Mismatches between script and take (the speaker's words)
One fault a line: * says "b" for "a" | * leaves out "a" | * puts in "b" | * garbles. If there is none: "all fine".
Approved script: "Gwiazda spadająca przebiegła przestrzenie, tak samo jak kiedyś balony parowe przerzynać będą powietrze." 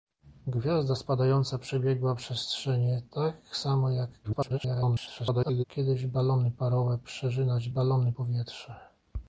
* garbles
* says "balony" for "będą"